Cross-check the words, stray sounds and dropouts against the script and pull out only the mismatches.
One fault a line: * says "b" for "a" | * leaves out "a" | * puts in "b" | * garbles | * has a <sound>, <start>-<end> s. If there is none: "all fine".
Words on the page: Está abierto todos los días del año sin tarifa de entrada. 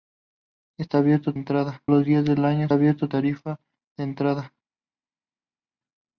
* says "entrada" for "todos"
* says "abierto" for "sin"